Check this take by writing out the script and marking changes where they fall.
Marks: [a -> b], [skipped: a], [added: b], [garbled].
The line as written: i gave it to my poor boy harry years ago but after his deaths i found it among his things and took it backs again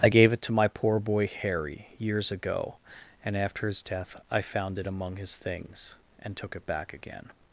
i gave it to my poor boy harry years ago [but -> and] after his [deaths -> death] i found it among his things and took it [backs -> back] again